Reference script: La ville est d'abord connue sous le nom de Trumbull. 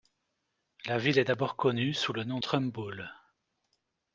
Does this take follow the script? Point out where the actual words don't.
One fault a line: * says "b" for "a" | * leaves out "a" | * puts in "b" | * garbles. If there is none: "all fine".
* leaves out "de"